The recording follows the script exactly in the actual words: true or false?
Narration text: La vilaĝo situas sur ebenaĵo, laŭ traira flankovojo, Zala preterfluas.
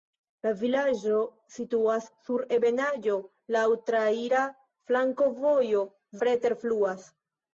false